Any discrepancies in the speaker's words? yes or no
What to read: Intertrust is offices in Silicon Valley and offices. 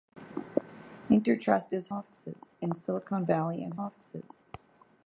no